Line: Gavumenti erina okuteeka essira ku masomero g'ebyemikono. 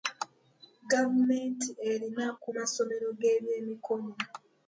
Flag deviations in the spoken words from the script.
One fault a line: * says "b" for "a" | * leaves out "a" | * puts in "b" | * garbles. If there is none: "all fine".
* leaves out "okuteeka essira"